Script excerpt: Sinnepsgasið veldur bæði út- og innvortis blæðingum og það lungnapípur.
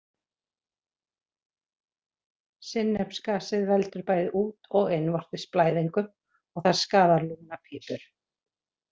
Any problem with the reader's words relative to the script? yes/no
yes